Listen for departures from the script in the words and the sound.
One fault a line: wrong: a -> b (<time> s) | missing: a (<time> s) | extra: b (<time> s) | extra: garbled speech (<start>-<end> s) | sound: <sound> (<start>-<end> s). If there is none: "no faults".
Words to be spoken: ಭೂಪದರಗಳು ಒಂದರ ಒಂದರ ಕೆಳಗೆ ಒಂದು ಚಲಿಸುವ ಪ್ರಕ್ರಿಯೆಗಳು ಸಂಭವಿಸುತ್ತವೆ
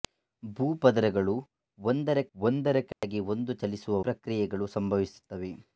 sound: dropout (2.9-3.0 s)